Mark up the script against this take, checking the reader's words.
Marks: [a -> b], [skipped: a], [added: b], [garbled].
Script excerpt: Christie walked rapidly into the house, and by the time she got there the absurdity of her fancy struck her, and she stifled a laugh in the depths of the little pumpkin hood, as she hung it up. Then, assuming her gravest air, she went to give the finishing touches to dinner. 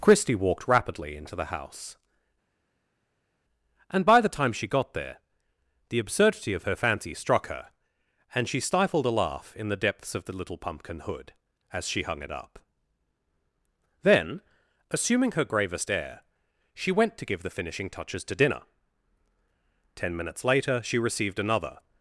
Christie walked rapidly into the house, and by the time she got there the absurdity of her fancy struck her, and she stifled a laugh in the depths of the little pumpkin hood, as she hung it up. Then, assuming her gravest air, she went to give the finishing touches to dinner. [added: Ten minutes later she received another]